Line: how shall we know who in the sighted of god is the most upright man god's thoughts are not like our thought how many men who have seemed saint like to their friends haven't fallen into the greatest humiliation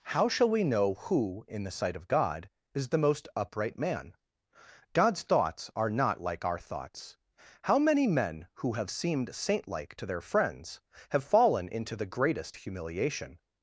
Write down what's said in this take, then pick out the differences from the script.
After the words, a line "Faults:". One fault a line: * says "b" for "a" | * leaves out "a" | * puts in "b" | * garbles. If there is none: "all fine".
how shall we know who in the sight of god is the most upright man god's thoughts are not like our thoughts how many men who have seemed saint like to their friends have fallen into the greatest humiliation
Faults:
* says "sight" for "sighted"
* says "thoughts" for "thought"
* says "have" for "haven't"